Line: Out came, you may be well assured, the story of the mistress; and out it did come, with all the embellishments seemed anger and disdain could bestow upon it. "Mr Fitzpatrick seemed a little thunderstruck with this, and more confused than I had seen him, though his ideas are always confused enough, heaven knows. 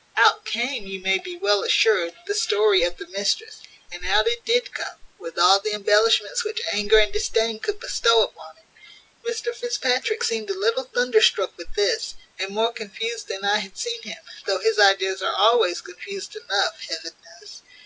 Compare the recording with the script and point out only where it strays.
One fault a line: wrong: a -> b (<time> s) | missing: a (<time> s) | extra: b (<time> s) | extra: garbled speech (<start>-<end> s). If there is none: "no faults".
wrong: seemed -> which (6.4 s)